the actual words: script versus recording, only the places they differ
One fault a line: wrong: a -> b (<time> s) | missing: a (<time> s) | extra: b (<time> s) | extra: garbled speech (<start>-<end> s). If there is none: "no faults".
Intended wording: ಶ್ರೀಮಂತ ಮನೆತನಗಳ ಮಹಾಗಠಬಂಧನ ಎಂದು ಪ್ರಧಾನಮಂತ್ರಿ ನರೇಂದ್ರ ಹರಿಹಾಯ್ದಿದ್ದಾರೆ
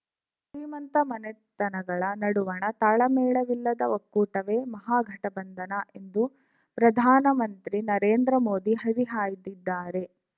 extra: ನಡುವಣ ತಾಳಮೇಳವಿಲ್ಲದ ಒಕ್ಕೂಟವೇ (2.2 s)
extra: ಮೋದಿ (8.5 s)